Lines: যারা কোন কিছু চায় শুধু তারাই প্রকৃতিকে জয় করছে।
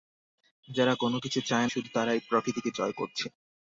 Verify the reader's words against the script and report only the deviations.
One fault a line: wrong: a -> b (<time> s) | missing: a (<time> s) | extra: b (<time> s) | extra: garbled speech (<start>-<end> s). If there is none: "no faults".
no faults